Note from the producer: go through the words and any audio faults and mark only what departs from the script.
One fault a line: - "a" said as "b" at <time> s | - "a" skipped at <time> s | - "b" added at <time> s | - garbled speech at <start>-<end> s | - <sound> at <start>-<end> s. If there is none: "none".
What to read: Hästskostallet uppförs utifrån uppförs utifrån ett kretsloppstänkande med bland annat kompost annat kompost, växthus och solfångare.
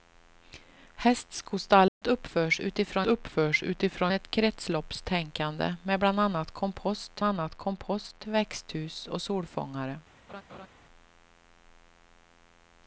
- dropout at 1.9-2.0 s
- laugh at 10.3-10.7 s